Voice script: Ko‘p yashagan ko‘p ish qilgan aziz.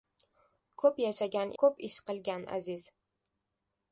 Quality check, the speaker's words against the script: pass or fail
pass